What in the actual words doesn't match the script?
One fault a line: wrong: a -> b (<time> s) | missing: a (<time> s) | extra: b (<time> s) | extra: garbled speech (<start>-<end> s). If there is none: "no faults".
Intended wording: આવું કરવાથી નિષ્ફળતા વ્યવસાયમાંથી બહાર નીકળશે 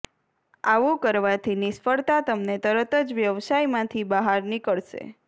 extra: તમને તરત જ (2.2 s)